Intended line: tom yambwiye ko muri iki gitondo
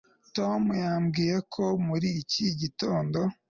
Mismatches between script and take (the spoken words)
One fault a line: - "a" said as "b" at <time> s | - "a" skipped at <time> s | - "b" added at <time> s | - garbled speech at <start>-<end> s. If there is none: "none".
none